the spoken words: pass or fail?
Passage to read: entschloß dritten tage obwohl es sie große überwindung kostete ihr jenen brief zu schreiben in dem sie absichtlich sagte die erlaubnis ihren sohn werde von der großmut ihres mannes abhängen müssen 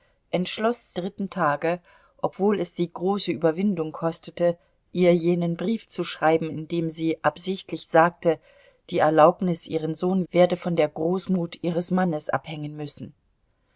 pass